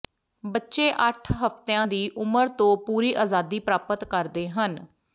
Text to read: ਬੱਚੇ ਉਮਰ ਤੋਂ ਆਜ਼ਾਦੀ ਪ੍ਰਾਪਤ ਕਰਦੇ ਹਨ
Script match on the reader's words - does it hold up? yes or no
no